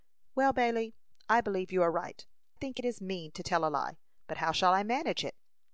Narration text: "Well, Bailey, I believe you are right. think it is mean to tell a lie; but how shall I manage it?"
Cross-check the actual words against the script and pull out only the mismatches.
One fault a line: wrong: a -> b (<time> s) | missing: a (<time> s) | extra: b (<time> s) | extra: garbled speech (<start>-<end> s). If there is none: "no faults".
no faults